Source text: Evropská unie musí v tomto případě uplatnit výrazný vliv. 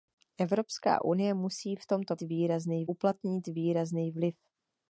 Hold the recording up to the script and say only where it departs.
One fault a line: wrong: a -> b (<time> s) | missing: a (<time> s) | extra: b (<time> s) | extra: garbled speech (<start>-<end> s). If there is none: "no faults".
wrong: případě -> výrazný (2.2 s)